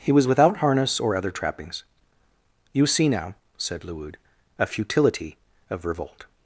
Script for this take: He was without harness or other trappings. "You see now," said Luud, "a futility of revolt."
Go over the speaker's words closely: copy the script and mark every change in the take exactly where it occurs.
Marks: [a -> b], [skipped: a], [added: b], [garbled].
He was without harness or other trappings. "You see now," said Luud, "a futility of revolt."